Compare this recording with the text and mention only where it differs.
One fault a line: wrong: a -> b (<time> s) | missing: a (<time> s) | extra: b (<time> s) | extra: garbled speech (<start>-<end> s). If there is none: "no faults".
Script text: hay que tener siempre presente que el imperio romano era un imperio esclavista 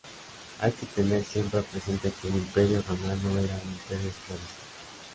no faults